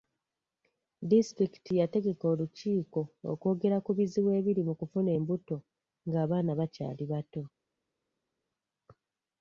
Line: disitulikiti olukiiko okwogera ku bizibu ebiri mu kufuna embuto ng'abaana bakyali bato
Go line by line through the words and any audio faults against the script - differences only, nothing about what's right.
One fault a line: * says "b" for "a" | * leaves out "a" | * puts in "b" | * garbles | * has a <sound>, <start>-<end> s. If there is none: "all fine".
* puts in "yategeka"